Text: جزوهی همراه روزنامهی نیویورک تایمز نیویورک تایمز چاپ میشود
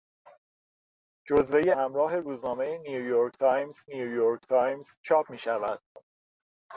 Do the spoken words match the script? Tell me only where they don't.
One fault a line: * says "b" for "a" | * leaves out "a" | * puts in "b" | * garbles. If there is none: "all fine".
all fine